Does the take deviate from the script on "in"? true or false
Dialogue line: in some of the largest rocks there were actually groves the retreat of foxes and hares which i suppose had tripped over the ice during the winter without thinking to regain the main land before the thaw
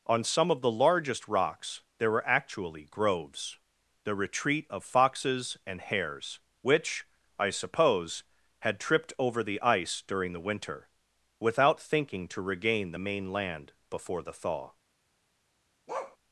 true